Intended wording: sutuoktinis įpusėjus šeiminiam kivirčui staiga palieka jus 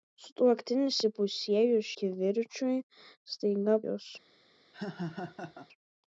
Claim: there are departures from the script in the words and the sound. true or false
true